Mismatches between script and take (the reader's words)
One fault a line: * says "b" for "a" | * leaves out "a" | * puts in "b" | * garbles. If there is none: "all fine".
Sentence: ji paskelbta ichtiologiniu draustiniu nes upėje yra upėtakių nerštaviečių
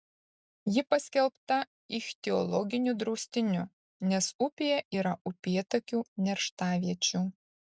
all fine